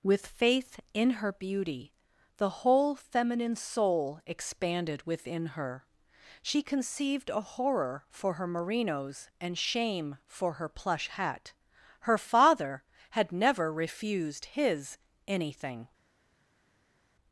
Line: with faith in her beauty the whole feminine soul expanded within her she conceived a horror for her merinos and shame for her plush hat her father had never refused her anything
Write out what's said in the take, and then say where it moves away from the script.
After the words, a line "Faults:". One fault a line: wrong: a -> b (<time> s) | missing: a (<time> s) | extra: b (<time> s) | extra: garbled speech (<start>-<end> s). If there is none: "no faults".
with faith in her beauty the whole feminine soul expanded within her she conceived a horror for her merinos and shame for her plush hat her father had never refused his anything
Faults:
wrong: her -> his (14.4 s)